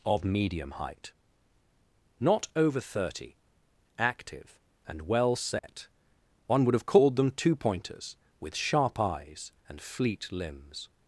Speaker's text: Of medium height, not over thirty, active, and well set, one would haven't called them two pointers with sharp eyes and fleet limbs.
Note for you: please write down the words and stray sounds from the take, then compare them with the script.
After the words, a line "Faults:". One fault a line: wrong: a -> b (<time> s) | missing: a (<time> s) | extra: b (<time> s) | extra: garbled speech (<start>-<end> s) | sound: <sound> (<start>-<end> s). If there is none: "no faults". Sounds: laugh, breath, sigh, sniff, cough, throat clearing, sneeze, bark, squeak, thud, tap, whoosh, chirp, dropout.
Of medium height, not over thirty, active, and well set, one would have called them two pointers with sharp eyes and fleet limbs.
Faults:
sound: dropout (5.6-5.6 s)
wrong: haven't -> have (6.7 s)